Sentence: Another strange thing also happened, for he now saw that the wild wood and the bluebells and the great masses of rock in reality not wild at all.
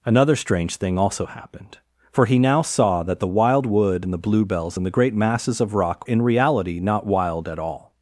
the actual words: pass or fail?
pass